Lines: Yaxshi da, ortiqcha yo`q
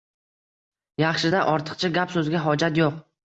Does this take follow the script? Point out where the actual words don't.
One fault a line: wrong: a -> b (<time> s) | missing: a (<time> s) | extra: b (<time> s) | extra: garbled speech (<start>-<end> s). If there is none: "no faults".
extra: gap so`zga hojat (2.0 s)